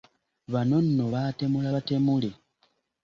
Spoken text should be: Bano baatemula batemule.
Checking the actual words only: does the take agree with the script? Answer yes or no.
no